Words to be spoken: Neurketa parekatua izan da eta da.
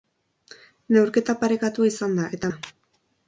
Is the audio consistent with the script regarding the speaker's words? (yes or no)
yes